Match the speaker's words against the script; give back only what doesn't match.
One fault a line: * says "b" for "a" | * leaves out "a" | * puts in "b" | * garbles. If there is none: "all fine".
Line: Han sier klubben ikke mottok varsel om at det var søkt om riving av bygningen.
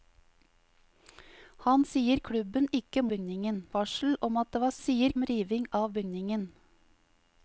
* says "bygningen" for "mottok"
* says "sier" for "søkt"